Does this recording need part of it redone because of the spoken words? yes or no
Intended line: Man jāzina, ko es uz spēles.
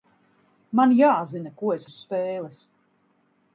no